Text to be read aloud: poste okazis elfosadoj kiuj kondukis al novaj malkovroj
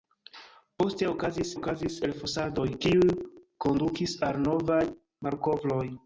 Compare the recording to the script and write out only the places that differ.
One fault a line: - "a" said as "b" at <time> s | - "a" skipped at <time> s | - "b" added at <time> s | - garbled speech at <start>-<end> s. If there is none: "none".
- "okazis" added at 1.5 s